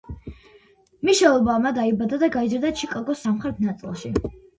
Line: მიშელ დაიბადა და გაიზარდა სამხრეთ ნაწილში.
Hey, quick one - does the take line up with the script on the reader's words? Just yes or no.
no